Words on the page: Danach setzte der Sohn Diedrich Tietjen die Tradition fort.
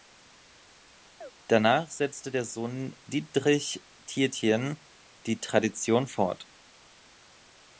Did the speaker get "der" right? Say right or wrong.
right